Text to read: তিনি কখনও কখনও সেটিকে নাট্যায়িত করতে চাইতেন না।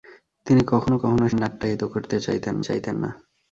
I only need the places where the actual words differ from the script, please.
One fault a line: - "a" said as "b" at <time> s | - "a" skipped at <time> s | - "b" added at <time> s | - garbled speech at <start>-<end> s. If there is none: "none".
- "সেটিকে" skipped at 1.3 s
- "চাইতেন" added at 2.6 s